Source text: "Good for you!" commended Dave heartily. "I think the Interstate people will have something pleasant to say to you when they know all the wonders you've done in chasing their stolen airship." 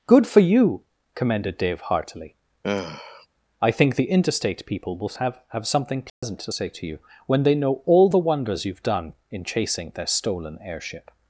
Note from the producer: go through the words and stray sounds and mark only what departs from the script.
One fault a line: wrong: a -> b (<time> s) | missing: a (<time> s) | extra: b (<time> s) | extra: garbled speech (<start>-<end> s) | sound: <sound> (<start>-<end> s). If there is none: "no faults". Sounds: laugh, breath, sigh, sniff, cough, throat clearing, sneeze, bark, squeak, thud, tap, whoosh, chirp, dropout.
sound: sigh (2.6-3.3 s)
extra: have (5.5 s)
sound: dropout (6.1-6.2 s)